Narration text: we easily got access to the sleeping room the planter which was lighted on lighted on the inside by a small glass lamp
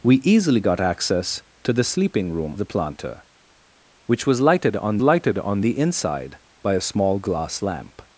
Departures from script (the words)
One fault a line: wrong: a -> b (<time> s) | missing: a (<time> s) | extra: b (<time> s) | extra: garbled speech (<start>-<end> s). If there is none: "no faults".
no faults